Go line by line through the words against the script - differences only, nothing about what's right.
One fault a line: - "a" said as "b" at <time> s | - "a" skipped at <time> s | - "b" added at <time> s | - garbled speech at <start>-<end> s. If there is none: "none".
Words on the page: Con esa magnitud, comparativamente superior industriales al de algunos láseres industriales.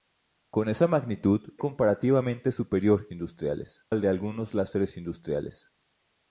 none